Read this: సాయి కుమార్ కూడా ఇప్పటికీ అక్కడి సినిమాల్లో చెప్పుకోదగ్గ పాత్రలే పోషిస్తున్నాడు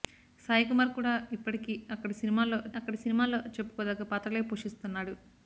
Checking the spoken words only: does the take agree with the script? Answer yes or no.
no